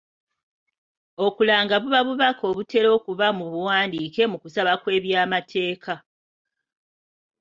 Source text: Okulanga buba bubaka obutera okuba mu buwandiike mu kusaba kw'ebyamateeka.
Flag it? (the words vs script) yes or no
no